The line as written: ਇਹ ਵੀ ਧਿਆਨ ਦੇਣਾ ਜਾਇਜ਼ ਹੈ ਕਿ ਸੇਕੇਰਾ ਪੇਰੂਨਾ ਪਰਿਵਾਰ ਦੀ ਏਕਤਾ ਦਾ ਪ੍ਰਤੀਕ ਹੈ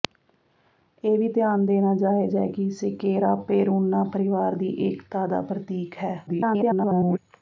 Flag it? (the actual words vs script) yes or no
yes